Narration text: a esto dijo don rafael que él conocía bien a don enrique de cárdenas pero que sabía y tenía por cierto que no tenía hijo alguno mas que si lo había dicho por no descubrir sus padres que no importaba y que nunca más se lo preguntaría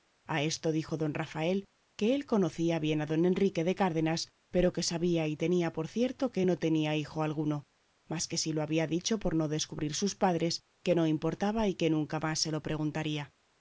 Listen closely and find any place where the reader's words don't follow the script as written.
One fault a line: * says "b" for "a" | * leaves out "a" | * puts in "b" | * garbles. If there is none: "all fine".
all fine